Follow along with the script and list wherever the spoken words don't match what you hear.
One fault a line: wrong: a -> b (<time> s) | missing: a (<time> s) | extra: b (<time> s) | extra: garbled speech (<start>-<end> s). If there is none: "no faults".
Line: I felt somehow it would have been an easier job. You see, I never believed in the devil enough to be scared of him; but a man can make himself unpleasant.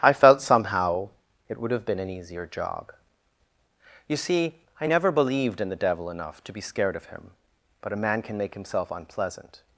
no faults